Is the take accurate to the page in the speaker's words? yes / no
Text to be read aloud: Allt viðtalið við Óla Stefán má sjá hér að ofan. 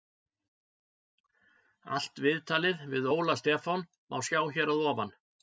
yes